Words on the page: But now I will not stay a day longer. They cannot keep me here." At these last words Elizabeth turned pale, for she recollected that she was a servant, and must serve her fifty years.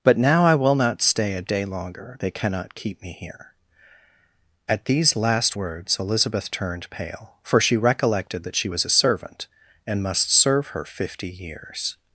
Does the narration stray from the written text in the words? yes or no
no